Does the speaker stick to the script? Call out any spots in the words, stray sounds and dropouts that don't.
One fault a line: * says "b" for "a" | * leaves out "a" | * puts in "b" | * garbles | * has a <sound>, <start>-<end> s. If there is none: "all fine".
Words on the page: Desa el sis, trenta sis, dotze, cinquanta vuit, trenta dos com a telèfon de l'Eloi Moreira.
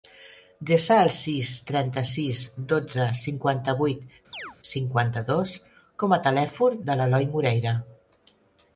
* has a chirp, 4.3-4.6 s
* says "cinquanta" for "trenta"